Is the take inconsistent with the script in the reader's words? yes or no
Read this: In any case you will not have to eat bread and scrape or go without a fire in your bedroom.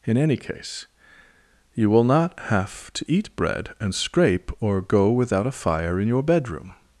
no